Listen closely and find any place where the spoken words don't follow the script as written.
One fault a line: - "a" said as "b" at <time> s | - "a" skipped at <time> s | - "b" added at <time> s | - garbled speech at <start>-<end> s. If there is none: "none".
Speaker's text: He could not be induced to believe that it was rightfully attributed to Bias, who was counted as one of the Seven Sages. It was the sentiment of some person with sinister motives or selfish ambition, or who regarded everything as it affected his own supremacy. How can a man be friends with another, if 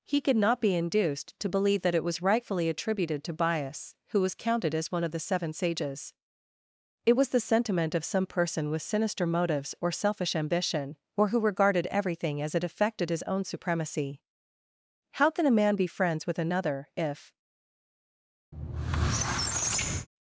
none